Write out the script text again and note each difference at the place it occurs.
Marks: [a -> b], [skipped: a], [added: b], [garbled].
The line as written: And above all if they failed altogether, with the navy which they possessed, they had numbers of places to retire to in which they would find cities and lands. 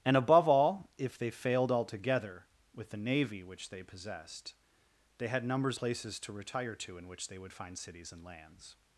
And above all if they failed altogether, with the navy which they possessed, they had numbers [skipped: of] places to retire to in which they would find cities and lands.